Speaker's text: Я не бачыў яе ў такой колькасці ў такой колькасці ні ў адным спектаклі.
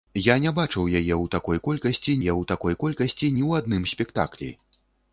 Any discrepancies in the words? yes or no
no